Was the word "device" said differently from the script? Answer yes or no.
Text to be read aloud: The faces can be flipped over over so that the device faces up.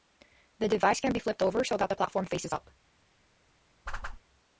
yes